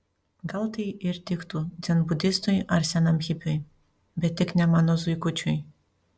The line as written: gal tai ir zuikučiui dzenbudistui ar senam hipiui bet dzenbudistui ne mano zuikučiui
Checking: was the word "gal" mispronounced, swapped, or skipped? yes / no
no